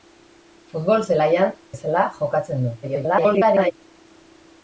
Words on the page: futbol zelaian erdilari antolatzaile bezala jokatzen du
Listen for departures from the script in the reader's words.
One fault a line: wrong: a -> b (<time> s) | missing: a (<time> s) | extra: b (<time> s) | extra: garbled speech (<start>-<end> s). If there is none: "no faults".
missing: erdilari antolatzaile (1.5 s)
extra: garbled speech (2.8-3.7 s)